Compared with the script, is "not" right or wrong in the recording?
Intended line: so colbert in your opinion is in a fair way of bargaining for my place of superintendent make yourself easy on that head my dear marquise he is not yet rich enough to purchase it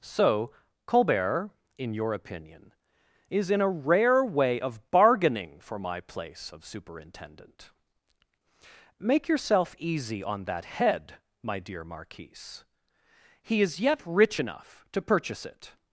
wrong